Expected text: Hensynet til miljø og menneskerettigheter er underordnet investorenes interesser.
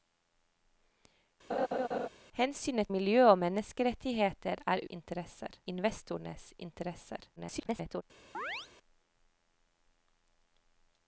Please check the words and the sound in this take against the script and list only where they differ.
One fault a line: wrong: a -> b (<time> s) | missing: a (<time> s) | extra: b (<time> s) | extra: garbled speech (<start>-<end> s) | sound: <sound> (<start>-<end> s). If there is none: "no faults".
sound: laugh (1.5-2.1 s)
missing: til (2.9 s)
wrong: underordnet -> interesser (4.9 s)
extra: garbled speech (7.4-8.0 s)
sound: chirp (8.3-8.7 s)